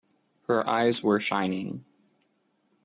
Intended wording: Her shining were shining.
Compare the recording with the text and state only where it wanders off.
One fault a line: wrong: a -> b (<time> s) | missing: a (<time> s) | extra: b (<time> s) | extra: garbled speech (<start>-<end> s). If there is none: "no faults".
wrong: shining -> eyes (0.7 s)